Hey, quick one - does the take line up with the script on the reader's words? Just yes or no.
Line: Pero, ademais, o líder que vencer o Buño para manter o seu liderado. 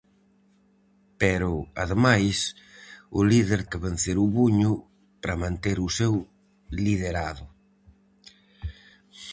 yes